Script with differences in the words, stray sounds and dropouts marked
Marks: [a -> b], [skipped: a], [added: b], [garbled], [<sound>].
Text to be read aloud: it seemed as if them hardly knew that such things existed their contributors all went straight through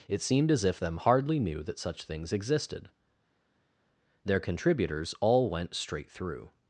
it seemed as if them hardly knew that such things existed their contributors all went straight through